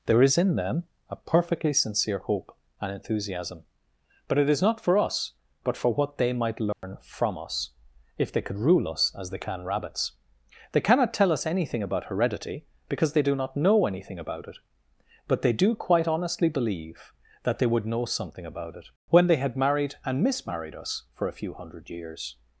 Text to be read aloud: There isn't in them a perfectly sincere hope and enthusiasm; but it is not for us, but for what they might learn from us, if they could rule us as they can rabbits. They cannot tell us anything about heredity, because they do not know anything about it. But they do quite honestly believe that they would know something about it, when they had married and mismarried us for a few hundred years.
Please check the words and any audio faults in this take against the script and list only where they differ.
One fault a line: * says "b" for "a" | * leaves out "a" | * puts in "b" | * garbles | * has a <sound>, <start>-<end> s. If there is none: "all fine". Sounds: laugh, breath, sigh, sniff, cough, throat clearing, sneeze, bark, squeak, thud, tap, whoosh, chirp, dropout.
* says "is" for "isn't"
* has a dropout, 6.7-6.8 s